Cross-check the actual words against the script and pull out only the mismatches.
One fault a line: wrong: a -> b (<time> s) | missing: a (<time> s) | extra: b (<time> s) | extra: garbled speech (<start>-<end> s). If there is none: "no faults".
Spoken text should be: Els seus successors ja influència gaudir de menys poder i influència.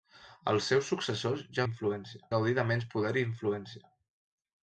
no faults